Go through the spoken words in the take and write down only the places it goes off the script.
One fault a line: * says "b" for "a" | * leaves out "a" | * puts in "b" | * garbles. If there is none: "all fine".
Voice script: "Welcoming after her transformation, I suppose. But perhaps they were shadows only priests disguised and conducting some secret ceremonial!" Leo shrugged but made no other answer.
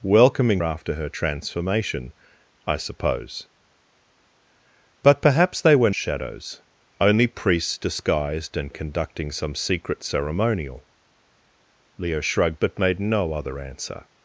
all fine